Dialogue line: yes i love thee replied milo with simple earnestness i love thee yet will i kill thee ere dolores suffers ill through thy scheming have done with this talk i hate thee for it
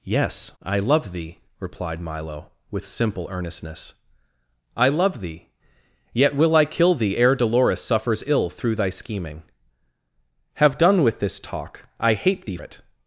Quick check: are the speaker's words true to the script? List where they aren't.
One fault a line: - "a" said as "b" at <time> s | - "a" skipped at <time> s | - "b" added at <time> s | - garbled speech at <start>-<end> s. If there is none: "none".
- "for" skipped at 12.6 s